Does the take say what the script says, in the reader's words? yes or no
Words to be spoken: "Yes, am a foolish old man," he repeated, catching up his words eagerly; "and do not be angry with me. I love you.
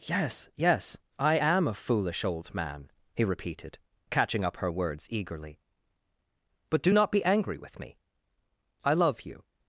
no